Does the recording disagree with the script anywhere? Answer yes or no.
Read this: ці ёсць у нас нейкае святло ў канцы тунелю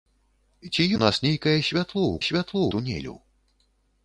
yes